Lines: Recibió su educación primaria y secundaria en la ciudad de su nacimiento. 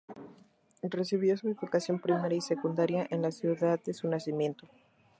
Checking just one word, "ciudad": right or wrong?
right